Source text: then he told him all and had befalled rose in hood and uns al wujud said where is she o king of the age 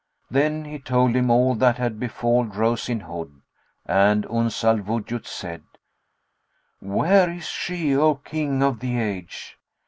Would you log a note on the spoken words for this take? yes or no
yes